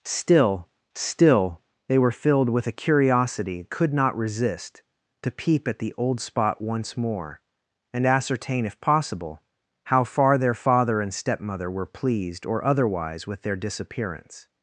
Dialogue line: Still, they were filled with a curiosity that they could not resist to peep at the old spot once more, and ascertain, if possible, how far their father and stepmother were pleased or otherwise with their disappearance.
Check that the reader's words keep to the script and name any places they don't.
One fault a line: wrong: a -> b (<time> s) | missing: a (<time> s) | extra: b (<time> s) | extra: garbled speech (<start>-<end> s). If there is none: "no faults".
extra: still (0.9 s)
missing: that they (3.6 s)